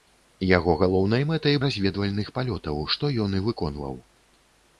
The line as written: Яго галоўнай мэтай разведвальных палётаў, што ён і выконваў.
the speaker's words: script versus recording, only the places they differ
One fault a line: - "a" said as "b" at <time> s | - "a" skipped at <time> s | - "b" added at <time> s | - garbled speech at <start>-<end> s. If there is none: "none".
none